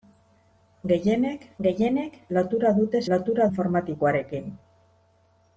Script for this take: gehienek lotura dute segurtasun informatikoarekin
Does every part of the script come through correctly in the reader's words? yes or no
no